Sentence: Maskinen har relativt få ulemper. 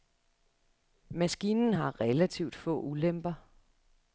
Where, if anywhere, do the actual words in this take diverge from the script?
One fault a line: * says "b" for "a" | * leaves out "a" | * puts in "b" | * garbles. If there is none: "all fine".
all fine